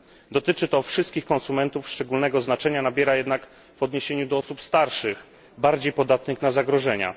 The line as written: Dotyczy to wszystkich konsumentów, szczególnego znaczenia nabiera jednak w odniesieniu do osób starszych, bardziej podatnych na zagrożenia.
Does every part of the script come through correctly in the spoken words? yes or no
yes